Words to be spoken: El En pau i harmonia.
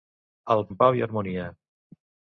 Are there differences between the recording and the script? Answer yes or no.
no